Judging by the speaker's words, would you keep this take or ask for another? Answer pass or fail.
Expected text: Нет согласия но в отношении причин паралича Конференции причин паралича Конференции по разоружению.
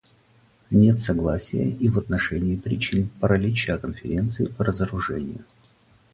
fail